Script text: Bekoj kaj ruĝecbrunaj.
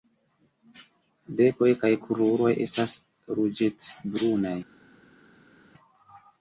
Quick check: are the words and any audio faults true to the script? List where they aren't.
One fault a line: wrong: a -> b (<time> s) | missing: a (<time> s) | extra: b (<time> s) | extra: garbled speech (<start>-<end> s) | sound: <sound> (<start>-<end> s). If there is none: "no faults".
extra: kruroj estas (2.0 s)